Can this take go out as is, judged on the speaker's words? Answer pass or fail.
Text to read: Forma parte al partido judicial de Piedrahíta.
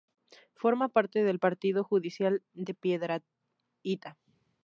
fail